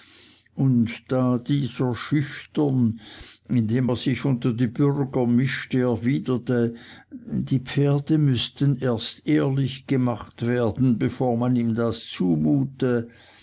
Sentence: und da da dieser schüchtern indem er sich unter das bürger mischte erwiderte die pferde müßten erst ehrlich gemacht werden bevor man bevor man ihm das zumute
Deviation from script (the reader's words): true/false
true